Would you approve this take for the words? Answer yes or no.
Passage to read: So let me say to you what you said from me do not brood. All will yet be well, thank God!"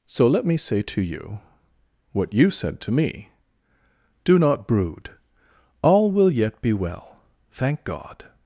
no